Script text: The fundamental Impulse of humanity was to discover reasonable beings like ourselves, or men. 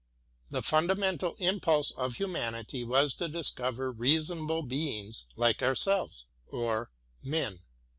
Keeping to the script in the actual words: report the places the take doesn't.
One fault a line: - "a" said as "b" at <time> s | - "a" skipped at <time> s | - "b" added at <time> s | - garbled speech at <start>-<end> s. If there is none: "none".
none